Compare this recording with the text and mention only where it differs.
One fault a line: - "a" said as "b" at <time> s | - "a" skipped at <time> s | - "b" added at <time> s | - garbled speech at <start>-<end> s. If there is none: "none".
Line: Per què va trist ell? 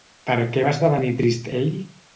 - "esdevenir" added at 0.8 s